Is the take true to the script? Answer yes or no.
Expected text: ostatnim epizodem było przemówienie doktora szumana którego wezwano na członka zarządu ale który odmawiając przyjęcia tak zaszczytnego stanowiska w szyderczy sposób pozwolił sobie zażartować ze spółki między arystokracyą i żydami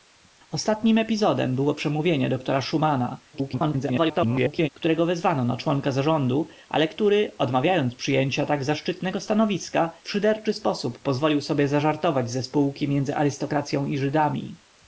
no